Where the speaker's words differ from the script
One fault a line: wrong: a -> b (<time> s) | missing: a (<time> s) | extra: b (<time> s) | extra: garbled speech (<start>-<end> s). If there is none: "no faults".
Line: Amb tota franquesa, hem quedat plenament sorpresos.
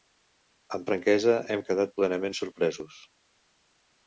missing: tota (0.9 s)